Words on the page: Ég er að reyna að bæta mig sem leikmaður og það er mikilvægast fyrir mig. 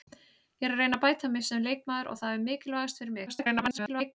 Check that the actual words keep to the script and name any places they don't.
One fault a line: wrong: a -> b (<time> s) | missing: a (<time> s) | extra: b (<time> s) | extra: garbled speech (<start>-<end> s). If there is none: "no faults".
extra: garbled speech (3.3-4.1 s)